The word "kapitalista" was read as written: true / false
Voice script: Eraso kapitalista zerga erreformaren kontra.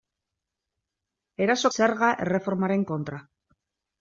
false